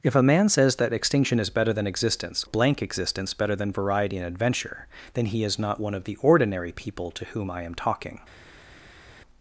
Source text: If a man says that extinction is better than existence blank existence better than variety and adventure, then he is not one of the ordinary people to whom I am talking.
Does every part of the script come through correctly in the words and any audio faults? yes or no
yes